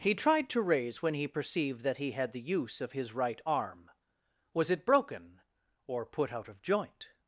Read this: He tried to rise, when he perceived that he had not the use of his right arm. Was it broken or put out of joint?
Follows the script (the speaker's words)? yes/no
no